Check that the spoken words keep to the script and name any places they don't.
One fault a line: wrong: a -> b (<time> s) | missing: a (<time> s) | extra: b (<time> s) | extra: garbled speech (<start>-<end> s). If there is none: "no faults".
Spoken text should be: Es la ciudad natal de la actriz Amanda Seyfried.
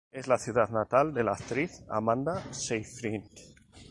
no faults